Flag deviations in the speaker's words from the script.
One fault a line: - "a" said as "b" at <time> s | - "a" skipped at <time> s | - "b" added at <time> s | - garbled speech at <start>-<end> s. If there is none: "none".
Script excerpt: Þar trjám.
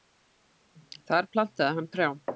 - "plantaði hann" added at 1.3 s